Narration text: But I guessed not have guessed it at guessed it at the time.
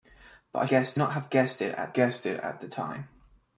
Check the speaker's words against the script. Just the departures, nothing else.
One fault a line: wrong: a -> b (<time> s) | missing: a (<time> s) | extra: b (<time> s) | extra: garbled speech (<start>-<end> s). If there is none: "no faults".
no faults